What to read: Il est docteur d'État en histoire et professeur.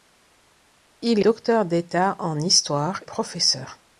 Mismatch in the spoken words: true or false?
true